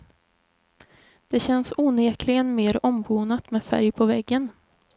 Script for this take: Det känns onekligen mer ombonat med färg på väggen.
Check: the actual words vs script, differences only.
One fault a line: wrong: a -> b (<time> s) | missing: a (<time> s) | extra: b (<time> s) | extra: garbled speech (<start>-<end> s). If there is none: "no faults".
no faults